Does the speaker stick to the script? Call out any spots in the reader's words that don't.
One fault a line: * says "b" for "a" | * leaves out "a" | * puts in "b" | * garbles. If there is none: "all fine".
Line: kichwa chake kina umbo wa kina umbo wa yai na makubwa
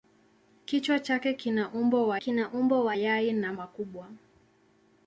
all fine